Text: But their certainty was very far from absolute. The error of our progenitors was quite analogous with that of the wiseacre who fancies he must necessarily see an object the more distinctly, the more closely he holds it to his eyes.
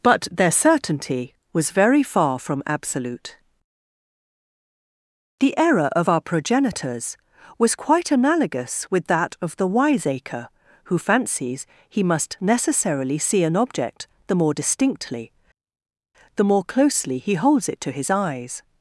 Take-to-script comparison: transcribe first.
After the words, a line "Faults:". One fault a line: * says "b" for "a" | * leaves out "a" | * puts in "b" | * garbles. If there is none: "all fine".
But their certainty was very far from absolute. The error of our progenitors was quite analogous with that of the wiseacre who fancies he must necessarily see an object the more distinctly, the more closely he holds it to his eyes.
Faults:
all fine